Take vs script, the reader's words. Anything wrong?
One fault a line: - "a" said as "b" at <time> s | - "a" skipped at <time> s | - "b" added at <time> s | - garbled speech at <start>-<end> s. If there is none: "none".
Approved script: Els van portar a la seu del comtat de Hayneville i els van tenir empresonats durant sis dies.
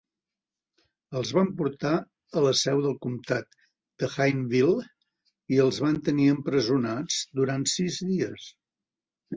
none